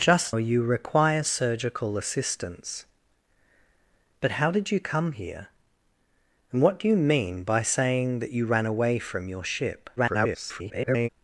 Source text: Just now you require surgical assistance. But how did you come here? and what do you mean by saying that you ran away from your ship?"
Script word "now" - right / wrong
wrong